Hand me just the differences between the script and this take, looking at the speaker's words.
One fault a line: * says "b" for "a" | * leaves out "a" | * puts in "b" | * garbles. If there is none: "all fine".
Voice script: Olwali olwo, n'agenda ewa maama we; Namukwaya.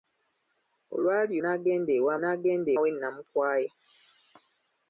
* leaves out "olwo"
* says "n'agenda" for "maama"